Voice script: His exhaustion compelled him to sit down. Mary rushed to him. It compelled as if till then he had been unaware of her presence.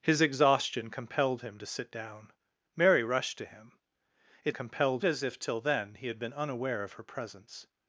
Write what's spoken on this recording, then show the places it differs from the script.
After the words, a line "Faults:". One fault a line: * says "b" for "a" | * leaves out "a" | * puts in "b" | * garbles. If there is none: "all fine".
His exhaustion compelled him to sit down. Mary rushed to him. It compelled as if till then he had been unaware of her presence.
Faults:
all fine